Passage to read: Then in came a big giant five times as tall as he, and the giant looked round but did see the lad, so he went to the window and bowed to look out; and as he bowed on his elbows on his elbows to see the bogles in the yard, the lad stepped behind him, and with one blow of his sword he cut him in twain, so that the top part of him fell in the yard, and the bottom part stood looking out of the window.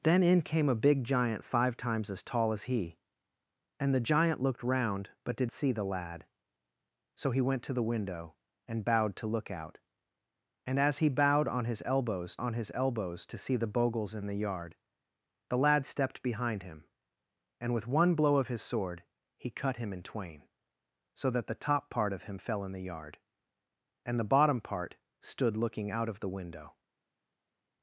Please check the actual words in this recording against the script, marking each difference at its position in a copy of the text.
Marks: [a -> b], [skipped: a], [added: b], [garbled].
Then in came a big giant five times as tall as he, and the giant looked round but did see the lad, so he went to the window and bowed to look out; and as he bowed on his elbows on his elbows to see the bogles in the yard, the lad stepped behind him, and with one blow of his sword he cut him in twain, so that the top part of him fell in the yard, and the bottom part stood looking out of the window.